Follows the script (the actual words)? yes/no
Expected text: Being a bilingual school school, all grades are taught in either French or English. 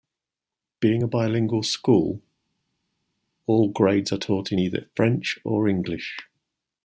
no